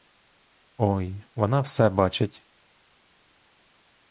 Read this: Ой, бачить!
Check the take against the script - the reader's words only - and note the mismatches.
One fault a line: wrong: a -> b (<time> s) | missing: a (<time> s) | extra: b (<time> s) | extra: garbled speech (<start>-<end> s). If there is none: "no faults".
extra: вона все (1.4 s)